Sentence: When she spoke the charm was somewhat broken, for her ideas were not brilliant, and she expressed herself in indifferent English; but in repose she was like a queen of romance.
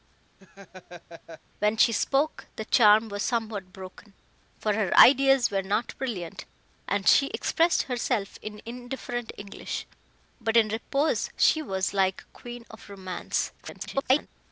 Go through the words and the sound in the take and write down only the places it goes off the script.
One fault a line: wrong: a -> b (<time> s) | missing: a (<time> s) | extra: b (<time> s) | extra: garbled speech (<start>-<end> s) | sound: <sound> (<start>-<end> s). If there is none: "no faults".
sound: laugh (0.4-1.4 s)
extra: garbled speech (13.6-14.3 s)